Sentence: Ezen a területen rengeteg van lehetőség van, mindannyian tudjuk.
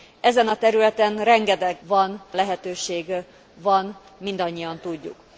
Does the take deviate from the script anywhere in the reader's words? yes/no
no